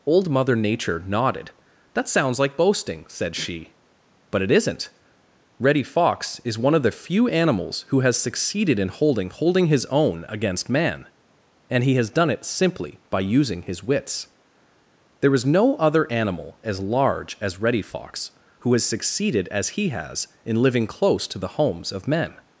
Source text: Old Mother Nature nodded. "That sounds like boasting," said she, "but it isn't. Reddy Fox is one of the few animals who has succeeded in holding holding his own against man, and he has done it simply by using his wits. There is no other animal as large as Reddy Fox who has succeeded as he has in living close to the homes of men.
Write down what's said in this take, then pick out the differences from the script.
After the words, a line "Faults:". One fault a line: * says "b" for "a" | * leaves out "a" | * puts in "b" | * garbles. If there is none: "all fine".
Old Mother Nature nodded. "That sounds like boasting," said she, "but it isn't. Reddy Fox is one of the few animals who has succeeded in holding holding his own against man, and he has done it simply by using his wits. There is no other animal as large as Reddy Fox who has succeeded as he has in living close to the homes of men.
Faults:
all fine